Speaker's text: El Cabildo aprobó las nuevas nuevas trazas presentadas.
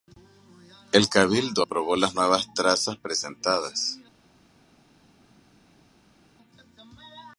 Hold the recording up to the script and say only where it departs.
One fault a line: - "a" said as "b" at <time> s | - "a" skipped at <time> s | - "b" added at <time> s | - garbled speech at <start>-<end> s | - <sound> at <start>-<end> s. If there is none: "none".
- "nuevas" skipped at 2.5 s